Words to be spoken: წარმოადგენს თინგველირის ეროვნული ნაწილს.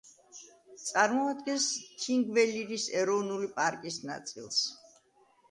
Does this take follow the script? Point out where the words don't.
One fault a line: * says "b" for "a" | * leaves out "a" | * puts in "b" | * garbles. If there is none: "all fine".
* puts in "პარკის"